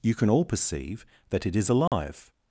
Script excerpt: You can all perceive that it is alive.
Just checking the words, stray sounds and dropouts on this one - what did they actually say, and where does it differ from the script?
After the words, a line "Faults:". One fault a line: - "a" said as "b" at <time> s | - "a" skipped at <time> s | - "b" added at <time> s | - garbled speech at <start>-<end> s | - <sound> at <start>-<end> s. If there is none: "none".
You can all perceive that it is alive.
Faults:
- dropout at 1.9-1.9 s